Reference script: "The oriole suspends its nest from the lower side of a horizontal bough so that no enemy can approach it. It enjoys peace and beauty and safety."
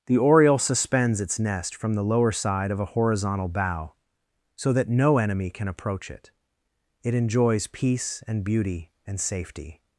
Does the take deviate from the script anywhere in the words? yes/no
no